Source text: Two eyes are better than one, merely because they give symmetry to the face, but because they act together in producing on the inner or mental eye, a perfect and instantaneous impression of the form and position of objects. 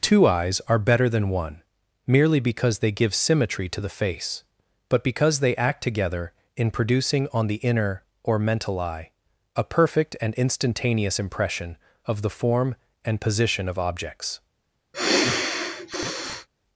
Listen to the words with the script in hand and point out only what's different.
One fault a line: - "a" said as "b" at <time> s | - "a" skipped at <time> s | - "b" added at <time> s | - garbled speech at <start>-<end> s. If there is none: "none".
none